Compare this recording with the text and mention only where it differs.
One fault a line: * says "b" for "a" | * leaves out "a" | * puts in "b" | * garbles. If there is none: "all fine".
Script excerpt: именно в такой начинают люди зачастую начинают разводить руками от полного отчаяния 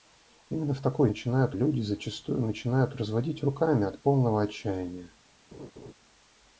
all fine